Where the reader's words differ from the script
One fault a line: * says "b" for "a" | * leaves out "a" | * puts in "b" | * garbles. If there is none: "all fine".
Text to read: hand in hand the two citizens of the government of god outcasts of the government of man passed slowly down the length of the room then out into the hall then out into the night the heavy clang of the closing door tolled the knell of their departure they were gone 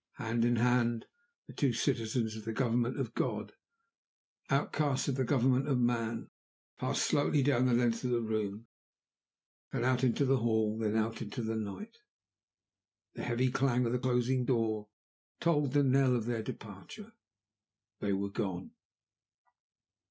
all fine